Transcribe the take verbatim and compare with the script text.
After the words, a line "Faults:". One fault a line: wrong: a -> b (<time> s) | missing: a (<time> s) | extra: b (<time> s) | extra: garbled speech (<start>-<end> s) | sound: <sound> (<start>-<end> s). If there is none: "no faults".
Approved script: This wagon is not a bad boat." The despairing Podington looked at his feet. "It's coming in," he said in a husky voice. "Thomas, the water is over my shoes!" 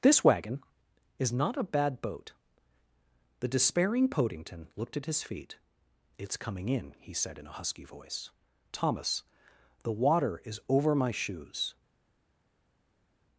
This wagon is not a bad boat." The despairing Podington looked at his feet. "It's coming in," he said in a husky voice. "Thomas, the water is over my shoes!"
Faults:
no faults